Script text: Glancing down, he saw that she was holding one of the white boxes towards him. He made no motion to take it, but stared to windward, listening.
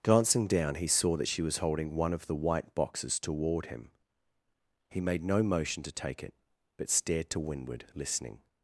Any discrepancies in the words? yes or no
yes